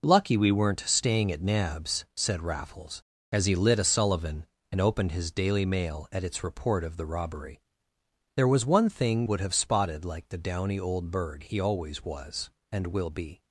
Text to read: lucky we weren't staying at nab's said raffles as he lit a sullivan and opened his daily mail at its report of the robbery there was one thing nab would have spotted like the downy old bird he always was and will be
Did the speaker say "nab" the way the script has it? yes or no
no